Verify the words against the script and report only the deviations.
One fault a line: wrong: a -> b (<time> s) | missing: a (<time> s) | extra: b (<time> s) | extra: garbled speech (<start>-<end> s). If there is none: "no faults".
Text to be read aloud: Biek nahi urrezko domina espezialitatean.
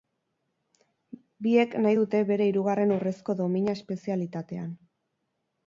extra: dute bere hirugarren (2.0 s)